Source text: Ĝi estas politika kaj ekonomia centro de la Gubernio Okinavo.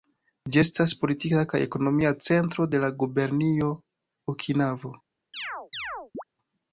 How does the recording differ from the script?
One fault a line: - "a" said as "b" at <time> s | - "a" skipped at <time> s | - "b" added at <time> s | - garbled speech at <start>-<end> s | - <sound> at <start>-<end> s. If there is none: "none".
- chirp at 5.3-6.2 s